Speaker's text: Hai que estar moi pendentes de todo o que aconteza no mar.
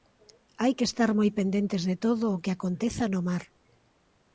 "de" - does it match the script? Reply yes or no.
yes